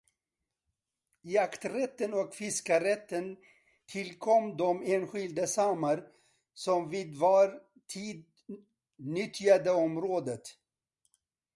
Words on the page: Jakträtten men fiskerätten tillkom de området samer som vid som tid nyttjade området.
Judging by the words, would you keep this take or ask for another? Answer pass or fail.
fail